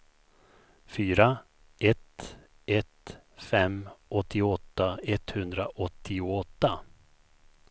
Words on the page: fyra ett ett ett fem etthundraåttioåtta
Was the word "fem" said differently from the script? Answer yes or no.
yes